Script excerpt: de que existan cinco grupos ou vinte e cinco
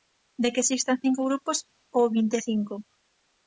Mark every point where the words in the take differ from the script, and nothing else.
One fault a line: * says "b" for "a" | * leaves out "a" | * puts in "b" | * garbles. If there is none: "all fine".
all fine